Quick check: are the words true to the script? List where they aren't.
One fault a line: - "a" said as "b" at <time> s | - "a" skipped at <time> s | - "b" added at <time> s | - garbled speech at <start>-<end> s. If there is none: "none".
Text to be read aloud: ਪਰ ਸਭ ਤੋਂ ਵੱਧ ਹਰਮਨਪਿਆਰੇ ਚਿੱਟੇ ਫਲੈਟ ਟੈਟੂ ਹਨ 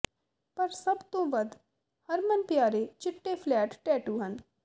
none